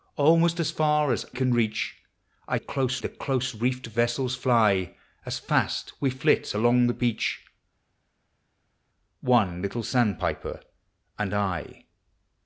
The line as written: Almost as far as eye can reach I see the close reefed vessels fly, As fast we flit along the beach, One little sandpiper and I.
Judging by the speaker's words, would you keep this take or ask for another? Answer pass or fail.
fail